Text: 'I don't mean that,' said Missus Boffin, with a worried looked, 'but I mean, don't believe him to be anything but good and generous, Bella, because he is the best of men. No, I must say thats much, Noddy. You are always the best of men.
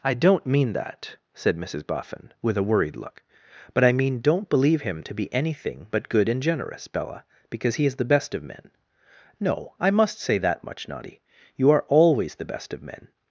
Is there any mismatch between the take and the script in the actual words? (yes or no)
yes